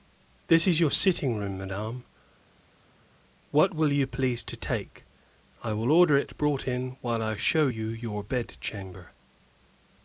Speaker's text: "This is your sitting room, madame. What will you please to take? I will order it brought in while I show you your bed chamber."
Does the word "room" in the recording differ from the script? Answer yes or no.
no